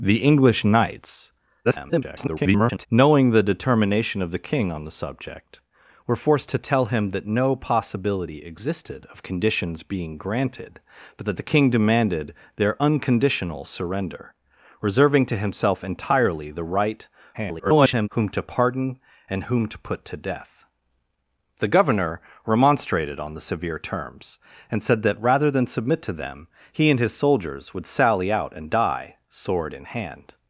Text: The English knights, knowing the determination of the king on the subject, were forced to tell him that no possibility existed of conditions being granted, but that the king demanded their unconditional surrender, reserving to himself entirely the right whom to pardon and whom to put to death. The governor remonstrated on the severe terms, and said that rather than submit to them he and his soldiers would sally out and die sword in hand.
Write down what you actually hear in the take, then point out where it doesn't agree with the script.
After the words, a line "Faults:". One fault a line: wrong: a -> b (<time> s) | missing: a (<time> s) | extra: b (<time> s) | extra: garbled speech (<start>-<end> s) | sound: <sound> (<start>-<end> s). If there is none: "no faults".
The English knights, [garbled] knowing the determination of the king on the subject, were forced to tell him that no possibility existed of conditions being granted, but that the king demanded their unconditional surrender, reserving to himself entirely the right [garbled] whom to pardon and whom to put to death. The governor remonstrated on the severe terms, and said that rather than submit to them he and his soldiers would sally out and die sword in hand.
Faults:
extra: garbled speech (1.6-2.9 s)
extra: garbled speech (17.3-18.1 s)